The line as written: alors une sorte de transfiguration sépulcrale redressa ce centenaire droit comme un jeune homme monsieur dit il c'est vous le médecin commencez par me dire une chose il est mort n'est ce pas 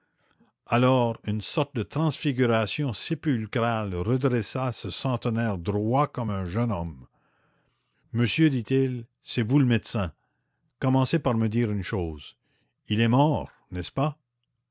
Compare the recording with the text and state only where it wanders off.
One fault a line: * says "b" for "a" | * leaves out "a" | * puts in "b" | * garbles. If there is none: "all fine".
all fine